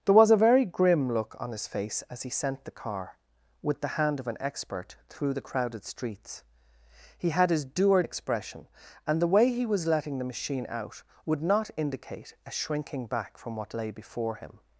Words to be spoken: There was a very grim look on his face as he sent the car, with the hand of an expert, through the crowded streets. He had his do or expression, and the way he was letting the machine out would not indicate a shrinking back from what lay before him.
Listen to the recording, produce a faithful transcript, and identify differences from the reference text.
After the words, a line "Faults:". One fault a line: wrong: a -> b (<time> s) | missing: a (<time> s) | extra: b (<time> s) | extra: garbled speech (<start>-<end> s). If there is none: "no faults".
There was a very grim look on his face as he sent the car, with the hand of an expert, through the crowded streets. He had his do or expression, and the way he was letting the machine out would not indicate a shrinking back from what lay before him.
Faults:
no faults